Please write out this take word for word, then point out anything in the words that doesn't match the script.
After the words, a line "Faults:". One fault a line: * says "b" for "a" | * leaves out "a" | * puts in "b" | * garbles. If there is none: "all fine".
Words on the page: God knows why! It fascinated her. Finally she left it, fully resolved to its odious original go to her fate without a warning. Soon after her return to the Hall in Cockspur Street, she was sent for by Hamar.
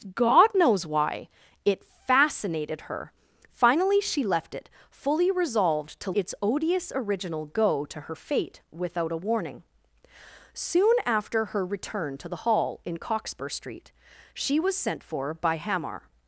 God knows why! It fascinated her. Finally she left it, fully resolved to its odious original go to her fate without a warning. Soon after her return to the Hall in Cockspur Street, she was sent for by Hamar.
Faults:
all fine